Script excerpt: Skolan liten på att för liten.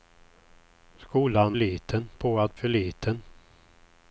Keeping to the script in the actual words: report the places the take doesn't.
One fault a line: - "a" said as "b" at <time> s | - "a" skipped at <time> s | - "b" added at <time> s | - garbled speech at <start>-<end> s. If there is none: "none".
none